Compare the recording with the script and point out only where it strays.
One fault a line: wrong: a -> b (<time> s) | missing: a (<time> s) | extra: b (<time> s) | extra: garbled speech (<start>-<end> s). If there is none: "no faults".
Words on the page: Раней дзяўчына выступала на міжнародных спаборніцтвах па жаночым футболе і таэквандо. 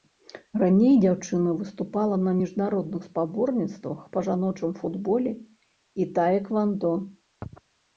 no faults